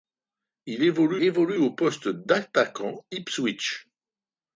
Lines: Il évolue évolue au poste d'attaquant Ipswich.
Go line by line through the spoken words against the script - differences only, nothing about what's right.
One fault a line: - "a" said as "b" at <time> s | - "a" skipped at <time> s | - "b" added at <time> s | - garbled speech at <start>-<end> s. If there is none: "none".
none